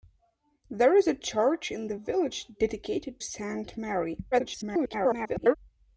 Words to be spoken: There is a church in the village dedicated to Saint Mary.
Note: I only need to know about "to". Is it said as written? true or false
false